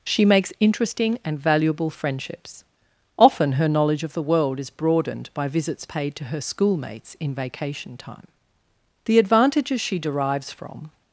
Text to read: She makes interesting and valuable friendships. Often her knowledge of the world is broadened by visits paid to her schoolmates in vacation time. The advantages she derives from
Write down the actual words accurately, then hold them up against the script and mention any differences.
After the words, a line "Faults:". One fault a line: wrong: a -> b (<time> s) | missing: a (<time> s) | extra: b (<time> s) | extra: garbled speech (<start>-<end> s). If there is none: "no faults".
She makes interesting and valuable friendships. Often her knowledge of the world is broadened by visits paid to her schoolmates in vacation time. The advantages she derives from
Faults:
no faults